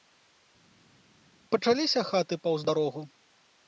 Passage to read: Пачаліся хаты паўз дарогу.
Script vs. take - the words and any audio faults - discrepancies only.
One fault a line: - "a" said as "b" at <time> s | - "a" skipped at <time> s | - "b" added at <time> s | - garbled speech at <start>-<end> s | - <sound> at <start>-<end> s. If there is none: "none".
none